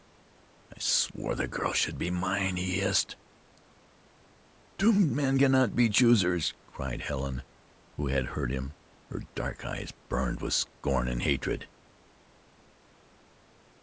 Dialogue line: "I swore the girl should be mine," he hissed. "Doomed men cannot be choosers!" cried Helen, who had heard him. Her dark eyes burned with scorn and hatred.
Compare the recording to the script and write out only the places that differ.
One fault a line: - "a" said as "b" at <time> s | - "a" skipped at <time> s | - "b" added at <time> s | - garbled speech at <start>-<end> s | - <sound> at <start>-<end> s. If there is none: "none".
none